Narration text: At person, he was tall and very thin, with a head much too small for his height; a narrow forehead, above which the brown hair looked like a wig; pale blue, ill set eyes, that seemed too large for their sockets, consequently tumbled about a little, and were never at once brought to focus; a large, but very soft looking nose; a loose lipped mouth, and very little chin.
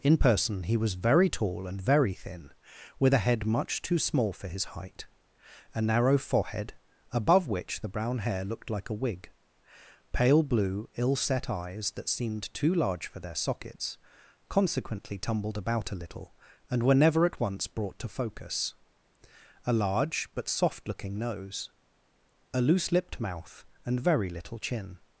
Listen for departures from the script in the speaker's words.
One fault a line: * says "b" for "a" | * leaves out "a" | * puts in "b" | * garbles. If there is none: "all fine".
* says "In" for "At"
* puts in "very"
* leaves out "very"